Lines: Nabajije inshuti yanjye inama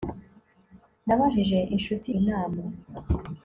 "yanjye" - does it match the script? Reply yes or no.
no